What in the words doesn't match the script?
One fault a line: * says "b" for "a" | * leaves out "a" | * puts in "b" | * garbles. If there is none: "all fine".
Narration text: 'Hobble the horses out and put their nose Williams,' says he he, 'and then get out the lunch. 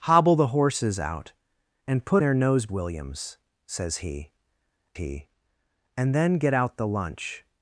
all fine